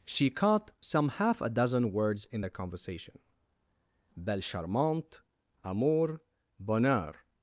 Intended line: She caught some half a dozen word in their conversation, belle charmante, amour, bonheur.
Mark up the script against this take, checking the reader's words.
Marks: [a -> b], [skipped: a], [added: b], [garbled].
She caught some half a dozen [word -> words] in their conversation, belle charmante, amour, bonheur.